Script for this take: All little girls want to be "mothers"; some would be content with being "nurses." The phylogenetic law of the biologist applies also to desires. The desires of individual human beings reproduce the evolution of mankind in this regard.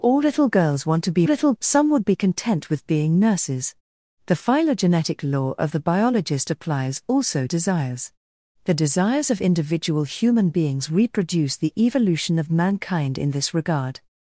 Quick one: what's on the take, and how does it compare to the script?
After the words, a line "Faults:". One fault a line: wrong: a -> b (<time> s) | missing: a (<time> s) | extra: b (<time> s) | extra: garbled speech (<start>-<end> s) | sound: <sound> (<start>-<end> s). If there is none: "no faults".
All little girls want to be "little"; some would be content with being "nurses." The phylogenetic law of the biologist applies also desires. The desires of individual human beings reproduce the evolution of mankind in this regard.
Faults:
wrong: mothers -> little (1.2 s)
missing: to (7.4 s)